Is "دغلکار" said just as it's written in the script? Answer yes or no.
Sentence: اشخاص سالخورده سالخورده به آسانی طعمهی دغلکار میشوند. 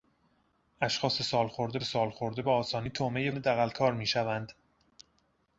yes